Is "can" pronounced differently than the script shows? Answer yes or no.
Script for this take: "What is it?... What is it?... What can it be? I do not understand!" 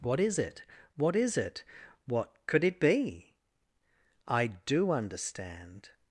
yes